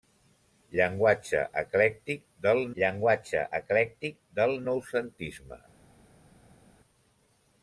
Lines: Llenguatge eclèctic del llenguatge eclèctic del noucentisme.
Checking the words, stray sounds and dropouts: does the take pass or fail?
pass